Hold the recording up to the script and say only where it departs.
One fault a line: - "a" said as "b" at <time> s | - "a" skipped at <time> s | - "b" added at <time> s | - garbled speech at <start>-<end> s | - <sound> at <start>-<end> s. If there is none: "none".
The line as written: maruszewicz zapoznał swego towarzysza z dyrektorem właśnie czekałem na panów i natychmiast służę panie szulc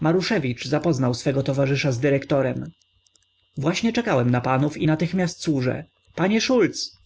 none